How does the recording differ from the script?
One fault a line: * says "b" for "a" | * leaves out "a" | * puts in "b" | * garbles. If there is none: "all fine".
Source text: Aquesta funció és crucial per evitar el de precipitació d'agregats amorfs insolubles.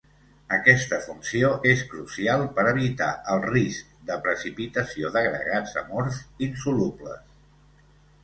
* puts in "risc"